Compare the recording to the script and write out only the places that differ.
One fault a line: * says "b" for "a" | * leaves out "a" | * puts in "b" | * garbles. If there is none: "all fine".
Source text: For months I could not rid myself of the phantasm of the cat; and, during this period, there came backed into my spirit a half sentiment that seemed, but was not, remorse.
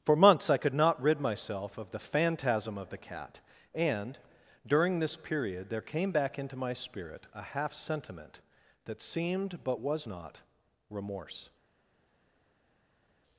* says "back" for "backed"